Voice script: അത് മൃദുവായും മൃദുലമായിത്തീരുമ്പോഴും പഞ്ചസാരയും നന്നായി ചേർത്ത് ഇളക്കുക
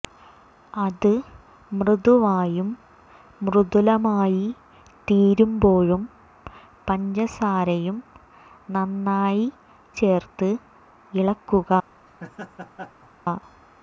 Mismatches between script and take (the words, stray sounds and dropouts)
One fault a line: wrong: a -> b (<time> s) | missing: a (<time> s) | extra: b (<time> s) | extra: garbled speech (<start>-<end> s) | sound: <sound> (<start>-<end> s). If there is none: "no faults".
sound: laugh (12.1-13.1 s)